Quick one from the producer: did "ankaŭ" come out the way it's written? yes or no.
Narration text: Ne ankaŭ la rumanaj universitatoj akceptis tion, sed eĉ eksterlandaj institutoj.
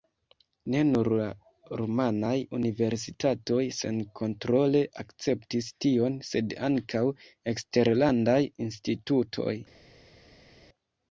no